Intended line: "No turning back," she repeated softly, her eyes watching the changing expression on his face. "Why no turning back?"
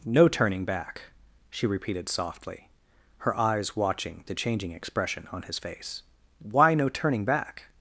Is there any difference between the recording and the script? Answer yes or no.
no